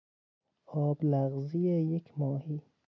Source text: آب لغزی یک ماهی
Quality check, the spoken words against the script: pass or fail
pass